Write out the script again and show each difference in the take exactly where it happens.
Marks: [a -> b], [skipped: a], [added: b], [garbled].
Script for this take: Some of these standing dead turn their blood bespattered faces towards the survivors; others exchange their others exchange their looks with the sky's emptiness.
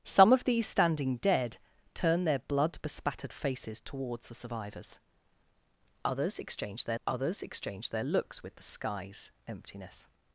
Some of these standing dead turn their blood bespattered faces towards the survivors; others exchange their others exchange their looks with the sky's emptiness.